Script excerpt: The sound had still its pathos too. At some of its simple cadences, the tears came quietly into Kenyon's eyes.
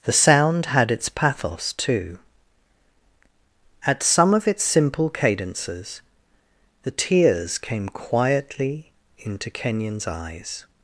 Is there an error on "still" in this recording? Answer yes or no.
yes